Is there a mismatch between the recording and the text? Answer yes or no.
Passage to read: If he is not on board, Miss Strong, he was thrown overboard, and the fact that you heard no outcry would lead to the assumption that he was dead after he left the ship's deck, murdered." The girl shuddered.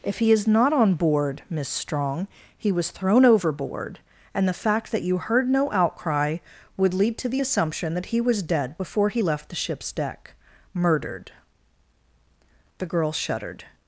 yes